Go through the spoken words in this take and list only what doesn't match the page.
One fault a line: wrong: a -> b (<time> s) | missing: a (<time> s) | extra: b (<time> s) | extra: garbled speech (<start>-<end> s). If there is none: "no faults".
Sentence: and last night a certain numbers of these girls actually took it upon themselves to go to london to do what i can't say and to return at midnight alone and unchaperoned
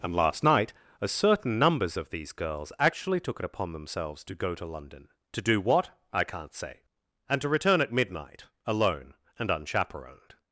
no faults